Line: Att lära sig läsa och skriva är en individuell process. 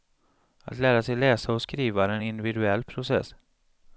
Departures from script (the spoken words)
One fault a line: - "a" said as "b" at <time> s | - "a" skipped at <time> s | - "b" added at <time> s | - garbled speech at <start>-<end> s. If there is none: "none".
none